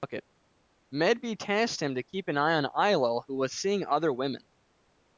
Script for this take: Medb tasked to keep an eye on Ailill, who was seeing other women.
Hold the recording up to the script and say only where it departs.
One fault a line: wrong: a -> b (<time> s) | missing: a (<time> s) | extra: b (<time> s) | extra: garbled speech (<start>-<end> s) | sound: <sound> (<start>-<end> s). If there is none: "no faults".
extra: him (1.8 s)